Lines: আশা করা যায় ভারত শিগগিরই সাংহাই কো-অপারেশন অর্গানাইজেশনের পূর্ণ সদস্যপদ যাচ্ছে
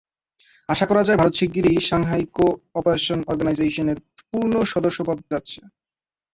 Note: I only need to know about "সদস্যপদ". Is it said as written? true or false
true